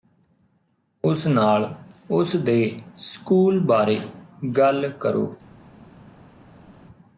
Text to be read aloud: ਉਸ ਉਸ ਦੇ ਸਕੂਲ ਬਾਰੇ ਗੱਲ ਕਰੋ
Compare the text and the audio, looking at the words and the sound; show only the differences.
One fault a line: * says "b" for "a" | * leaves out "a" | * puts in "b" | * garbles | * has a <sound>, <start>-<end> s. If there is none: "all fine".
* puts in "ਨਾਲ"